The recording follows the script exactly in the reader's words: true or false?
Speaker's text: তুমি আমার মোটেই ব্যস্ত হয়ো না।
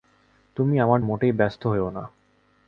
true